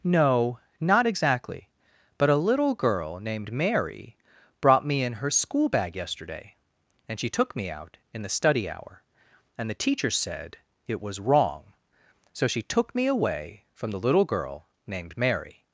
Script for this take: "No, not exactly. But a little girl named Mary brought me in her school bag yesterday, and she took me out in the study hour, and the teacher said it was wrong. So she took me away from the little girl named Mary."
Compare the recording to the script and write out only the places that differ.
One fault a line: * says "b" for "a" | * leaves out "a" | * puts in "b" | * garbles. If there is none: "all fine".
all fine